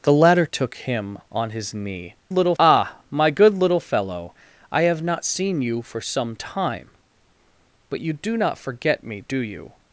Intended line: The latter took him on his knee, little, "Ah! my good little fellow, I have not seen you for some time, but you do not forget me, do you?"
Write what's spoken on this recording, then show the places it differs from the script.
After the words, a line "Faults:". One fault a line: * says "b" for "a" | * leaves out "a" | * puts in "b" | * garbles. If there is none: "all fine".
The latter took him on his knee, little, "Ah! my good little fellow, I have not seen you for some time, but you do not forget me, do you?"
Faults:
all fine